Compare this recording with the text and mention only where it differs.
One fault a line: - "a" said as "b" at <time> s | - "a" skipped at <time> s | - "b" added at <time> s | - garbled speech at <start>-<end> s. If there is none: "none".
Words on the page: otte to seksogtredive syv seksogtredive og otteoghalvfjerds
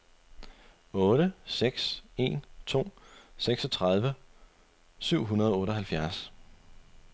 - "seks en" added at 1.5 s
- "seksogtredive" said as "hundrede" at 5.2 s